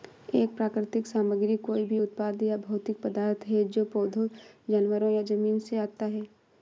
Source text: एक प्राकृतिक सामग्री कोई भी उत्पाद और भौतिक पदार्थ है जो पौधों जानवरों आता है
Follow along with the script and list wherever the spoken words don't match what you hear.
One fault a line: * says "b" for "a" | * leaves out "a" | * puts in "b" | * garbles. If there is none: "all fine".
* says "या" for "और"
* puts in "या जमीन से"